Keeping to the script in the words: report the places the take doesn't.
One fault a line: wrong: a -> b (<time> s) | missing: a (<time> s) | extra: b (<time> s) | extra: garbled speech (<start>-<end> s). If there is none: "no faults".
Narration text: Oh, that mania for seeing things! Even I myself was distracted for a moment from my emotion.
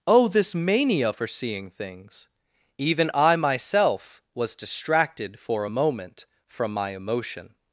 wrong: that -> this (0.3 s)